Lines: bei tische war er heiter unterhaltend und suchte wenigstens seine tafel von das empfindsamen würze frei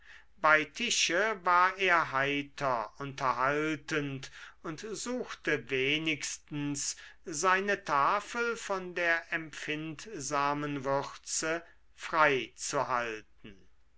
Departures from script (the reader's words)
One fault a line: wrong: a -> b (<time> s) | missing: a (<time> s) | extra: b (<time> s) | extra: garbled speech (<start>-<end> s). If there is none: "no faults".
wrong: das -> der (8.9 s)